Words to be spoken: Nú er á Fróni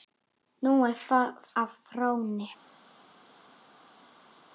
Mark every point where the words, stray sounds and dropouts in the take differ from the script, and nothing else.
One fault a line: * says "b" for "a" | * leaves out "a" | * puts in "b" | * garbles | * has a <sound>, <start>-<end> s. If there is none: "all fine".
all fine